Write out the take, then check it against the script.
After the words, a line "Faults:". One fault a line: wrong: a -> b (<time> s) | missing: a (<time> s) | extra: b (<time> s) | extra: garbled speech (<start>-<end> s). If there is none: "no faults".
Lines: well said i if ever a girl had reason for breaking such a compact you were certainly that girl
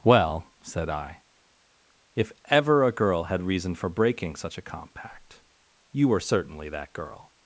well said i if ever a girl had reason for breaking such a compact you were certainly that girl
Faults:
no faults